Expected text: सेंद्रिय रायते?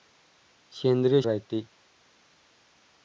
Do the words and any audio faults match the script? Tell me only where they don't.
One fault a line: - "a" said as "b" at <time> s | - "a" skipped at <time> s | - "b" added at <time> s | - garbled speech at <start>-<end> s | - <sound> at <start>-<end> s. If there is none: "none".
none